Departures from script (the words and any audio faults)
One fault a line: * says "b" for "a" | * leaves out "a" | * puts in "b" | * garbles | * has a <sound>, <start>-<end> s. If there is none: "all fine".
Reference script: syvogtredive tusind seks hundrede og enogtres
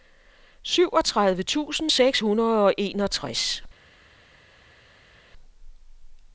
all fine